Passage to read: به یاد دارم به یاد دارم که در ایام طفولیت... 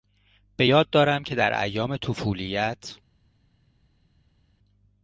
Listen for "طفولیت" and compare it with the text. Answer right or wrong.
right